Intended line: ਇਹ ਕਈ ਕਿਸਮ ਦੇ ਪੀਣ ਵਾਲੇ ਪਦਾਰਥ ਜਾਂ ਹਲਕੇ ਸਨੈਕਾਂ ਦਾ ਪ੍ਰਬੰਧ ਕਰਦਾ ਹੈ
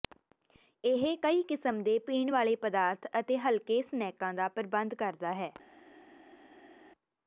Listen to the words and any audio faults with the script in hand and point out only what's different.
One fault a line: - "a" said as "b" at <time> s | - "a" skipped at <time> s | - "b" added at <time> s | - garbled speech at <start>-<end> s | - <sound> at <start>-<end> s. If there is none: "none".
- "ਜਾਂ" said as "ਅਤੇ" at 3.2 s